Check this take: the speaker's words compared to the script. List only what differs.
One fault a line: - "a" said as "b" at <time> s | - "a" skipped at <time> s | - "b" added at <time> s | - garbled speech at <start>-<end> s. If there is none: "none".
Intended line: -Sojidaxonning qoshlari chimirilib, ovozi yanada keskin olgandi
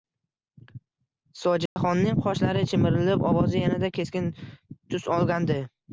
- "tus" added at 4.9 s